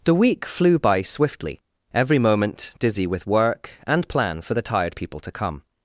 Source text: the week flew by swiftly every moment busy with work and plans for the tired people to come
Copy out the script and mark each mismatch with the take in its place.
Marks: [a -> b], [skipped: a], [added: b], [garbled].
the week flew by swiftly every moment [busy -> dizzy] with work and [plans -> plan] for the tired people to come